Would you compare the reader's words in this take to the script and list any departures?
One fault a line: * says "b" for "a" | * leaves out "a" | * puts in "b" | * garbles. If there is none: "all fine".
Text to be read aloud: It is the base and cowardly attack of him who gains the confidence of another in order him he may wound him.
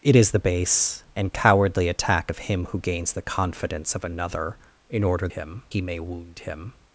all fine